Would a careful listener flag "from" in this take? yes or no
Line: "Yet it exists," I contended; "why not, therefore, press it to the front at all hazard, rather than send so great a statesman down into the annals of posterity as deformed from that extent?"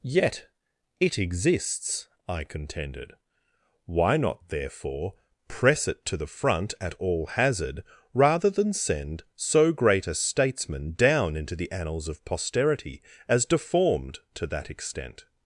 yes